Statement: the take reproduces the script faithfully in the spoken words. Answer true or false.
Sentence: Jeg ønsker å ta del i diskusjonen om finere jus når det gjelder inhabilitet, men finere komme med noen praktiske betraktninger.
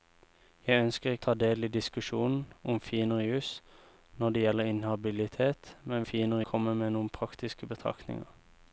true